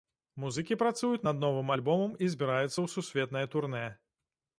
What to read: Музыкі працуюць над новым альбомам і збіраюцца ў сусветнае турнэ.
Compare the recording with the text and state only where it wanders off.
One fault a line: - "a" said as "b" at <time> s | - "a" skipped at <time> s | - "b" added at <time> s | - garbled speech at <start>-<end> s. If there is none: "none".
none